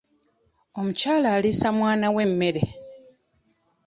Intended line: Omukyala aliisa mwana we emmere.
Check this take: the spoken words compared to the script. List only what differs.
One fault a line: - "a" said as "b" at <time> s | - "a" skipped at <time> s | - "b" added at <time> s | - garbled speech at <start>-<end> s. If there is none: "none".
none